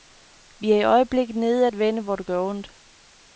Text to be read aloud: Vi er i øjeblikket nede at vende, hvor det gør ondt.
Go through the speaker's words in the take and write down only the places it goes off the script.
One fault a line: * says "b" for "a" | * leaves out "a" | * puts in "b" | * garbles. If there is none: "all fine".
all fine